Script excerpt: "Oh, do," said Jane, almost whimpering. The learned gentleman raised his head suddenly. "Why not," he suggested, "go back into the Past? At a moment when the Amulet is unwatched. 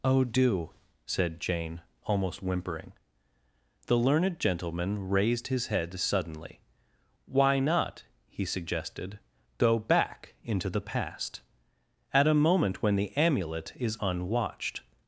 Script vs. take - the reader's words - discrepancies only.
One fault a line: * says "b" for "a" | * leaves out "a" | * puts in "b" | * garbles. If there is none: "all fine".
all fine